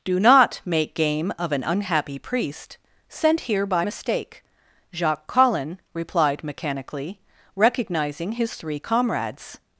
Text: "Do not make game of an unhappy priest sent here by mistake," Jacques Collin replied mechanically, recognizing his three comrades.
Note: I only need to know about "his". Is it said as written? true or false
true